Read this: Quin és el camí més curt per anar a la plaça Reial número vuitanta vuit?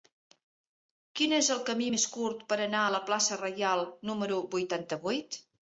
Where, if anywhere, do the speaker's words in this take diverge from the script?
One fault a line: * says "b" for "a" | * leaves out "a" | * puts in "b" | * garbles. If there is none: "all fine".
all fine